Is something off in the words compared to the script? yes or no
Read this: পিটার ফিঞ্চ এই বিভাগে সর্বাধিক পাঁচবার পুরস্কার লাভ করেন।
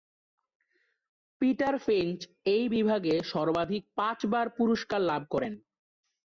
no